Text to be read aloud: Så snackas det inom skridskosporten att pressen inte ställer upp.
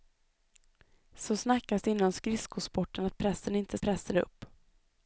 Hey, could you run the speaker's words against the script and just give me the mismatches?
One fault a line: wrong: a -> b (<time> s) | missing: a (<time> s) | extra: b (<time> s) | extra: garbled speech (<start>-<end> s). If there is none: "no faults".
wrong: ställer -> pressen (3.8 s)